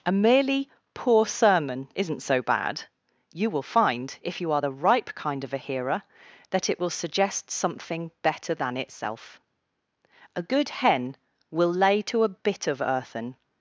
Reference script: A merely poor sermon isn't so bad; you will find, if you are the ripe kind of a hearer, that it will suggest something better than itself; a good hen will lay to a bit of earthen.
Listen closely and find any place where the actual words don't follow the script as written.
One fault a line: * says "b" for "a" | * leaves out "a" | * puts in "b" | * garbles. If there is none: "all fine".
all fine